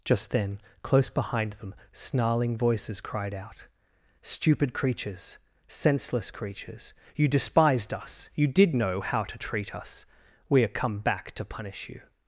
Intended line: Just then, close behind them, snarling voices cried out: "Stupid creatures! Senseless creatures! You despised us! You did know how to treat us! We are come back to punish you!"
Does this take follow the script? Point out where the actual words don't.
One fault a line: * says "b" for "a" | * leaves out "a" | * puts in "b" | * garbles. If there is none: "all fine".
all fine